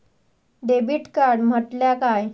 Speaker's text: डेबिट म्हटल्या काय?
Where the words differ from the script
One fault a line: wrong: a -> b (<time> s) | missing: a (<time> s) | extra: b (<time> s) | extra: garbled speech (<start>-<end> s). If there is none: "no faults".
extra: कार्ड (1.1 s)